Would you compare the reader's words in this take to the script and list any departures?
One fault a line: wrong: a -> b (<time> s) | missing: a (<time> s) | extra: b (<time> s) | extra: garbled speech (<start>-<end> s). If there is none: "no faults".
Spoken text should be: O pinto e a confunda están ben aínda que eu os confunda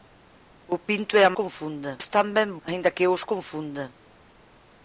no faults